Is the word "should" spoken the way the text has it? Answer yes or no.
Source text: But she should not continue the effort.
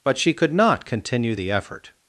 no